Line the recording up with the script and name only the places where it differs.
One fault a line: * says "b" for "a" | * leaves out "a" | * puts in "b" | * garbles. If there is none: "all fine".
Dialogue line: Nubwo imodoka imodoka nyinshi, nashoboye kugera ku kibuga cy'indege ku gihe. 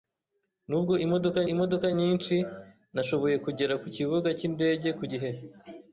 all fine